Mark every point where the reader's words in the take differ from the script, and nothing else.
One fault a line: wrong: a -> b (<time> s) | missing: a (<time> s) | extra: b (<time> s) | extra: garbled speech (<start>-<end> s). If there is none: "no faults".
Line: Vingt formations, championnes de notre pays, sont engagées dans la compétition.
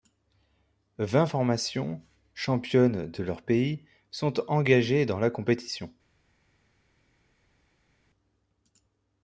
wrong: notre -> leur (3.2 s)